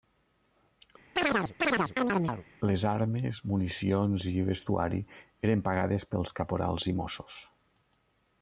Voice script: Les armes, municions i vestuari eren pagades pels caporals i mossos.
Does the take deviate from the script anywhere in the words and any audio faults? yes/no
yes